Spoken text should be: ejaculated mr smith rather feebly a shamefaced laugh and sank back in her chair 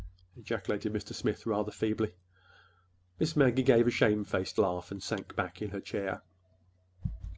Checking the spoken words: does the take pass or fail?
fail